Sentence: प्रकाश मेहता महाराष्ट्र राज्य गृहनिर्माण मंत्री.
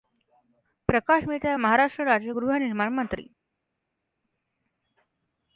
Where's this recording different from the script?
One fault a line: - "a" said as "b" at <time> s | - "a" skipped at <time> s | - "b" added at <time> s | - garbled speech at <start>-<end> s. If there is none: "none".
none